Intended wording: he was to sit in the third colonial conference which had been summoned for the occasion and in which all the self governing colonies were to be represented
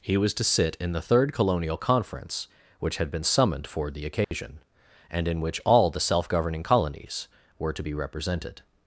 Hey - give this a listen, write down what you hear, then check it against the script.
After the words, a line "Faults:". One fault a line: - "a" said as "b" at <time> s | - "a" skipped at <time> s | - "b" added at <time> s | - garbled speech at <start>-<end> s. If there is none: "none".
he was to sit in the third colonial conference which had been summoned for the occasion and in which all the self governing colonies were to be represented
Faults:
none